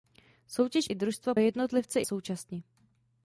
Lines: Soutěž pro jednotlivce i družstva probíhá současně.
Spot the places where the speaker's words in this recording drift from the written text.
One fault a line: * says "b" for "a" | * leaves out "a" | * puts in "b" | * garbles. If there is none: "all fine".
* leaves out "pro jednotlivce"
* says "jednotlivce" for "probíhá"